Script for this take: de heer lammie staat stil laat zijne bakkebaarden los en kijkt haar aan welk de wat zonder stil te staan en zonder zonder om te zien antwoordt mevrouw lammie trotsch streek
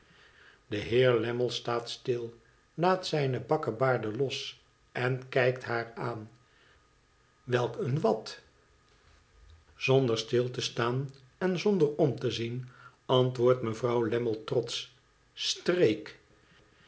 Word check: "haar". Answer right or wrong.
right